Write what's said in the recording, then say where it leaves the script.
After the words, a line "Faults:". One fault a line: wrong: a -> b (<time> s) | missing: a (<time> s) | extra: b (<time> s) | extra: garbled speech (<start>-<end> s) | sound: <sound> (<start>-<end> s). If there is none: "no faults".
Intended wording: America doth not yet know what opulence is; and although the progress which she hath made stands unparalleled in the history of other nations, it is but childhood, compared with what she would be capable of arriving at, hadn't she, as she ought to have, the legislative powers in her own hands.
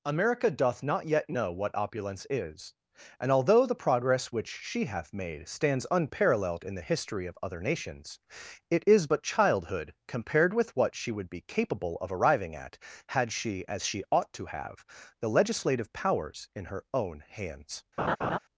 America doth not yet know what opulence is; and although the progress which she hath made stands unparalleled in the history of other nations, it is but childhood, compared with what she would be capable of arriving at, had she, as she ought to have, the legislative powers in her own hands.
Faults:
wrong: hadn't -> had (13.1 s)
sound: laugh (18.0-18.4 s)